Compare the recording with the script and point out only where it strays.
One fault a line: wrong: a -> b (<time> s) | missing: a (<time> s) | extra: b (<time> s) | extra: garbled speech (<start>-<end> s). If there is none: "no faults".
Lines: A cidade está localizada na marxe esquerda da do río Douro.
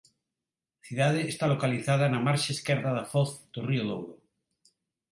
extra: foz (3.1 s)